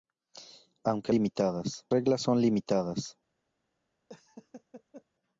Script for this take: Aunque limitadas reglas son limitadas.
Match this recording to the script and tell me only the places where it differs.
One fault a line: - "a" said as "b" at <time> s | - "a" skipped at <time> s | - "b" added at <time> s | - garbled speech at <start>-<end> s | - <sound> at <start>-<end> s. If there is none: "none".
- laugh at 4.1-5.0 s